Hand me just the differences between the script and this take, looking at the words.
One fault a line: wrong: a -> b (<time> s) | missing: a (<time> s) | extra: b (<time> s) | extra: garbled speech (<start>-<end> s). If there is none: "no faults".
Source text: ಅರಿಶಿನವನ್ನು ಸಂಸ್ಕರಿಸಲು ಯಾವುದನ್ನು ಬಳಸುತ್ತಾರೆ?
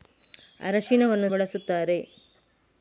missing: ಸಂಸ್ಕರಿಸಲು ಯಾವುದನ್ನು (1.3 s)